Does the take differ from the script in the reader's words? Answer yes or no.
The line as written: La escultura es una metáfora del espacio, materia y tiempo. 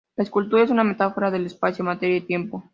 no